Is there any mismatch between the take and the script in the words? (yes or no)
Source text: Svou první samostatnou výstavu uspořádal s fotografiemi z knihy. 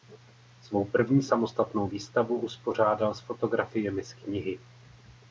no